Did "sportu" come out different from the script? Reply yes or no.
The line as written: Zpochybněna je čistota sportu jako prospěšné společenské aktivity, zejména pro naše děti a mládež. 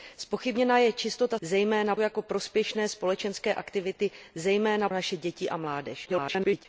yes